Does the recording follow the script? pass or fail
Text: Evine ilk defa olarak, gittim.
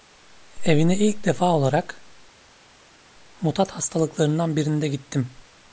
fail